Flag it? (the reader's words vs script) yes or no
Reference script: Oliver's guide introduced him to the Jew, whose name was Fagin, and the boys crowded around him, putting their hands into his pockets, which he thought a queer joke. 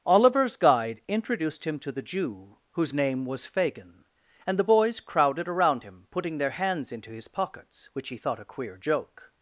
no